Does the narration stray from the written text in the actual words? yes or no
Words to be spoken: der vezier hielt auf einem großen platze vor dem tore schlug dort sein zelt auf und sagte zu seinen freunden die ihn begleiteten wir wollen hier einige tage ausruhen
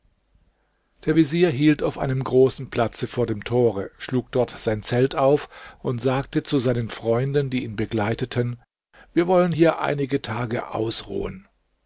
no